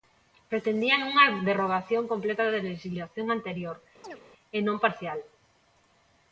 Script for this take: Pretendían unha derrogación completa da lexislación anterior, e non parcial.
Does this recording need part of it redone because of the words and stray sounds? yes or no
yes